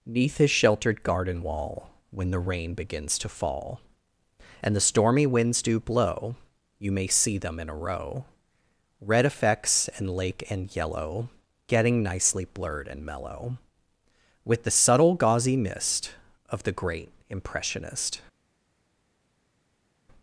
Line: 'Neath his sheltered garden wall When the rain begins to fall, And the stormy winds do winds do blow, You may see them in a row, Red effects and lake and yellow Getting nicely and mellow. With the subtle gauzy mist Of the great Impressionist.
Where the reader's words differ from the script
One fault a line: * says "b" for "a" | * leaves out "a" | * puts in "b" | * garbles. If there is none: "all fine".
* leaves out "winds do"
* puts in "blurred"